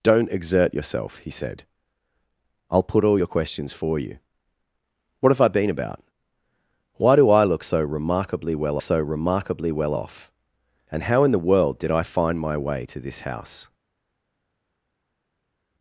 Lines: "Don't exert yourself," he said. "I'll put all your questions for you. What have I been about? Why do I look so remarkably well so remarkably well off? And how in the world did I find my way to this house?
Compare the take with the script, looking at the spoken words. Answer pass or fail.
pass